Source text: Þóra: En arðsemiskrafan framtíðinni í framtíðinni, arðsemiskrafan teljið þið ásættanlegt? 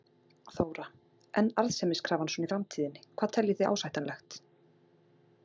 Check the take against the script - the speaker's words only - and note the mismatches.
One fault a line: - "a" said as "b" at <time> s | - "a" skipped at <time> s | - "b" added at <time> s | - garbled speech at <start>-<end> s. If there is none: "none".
- "framtíðinni" said as "svona" at 2.4 s
- "arðsemiskrafan" said as "hvað" at 3.2 s